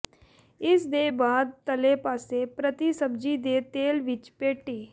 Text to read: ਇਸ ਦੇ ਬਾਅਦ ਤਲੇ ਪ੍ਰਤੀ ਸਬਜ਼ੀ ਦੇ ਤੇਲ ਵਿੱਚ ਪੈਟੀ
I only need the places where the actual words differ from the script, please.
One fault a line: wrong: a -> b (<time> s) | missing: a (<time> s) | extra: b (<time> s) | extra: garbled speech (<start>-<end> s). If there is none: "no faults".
extra: ਪਾਸੇ (2.0 s)